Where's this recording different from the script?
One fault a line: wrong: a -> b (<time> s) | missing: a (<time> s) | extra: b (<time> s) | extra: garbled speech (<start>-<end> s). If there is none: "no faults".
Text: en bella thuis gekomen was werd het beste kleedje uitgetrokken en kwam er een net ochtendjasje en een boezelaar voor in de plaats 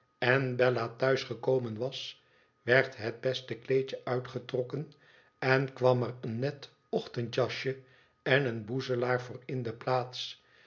no faults